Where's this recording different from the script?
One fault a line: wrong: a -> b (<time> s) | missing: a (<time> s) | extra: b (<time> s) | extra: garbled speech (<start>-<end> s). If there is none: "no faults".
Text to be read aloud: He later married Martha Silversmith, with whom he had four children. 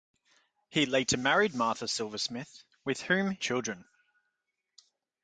missing: he had four (3.4 s)